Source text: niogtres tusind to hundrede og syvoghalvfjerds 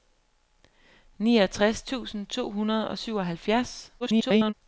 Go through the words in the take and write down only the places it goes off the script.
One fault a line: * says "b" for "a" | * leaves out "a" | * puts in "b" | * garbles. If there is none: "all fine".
* garbles